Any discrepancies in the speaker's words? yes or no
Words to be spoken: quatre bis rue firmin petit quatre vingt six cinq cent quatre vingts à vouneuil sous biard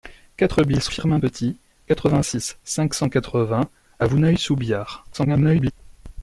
yes